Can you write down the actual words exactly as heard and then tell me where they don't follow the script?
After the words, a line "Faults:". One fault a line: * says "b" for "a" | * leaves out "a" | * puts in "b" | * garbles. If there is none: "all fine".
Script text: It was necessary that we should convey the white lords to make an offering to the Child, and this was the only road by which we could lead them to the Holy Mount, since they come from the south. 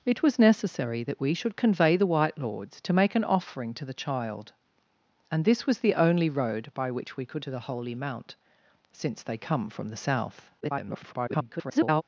It was necessary that we should convey the white lords to make an offering to the Child, and this was the only road by which we could to the Holy Mount, since they come from the south. [garbled]
Faults:
* leaves out "lead them"
* garbles